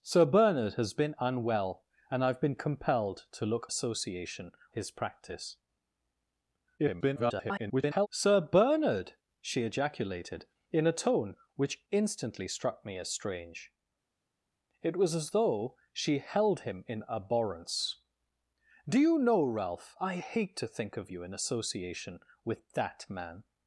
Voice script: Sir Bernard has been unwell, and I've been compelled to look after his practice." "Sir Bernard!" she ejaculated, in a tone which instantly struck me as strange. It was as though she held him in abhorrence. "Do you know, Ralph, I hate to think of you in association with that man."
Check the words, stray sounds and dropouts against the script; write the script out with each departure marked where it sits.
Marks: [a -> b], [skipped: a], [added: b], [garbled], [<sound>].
Sir Bernard has been unwell, and I've been compelled to look [after -> association] his practice." [garbled] "Sir Bernard!" she ejaculated, in a tone which instantly struck me as strange. It was as though she held him in abhorrence. "Do you know, Ralph, I hate to think of you in association with that man."